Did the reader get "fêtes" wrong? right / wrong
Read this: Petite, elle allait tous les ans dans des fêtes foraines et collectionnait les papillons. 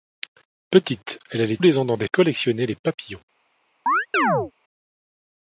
wrong